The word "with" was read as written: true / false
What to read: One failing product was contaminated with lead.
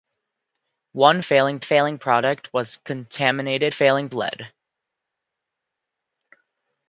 false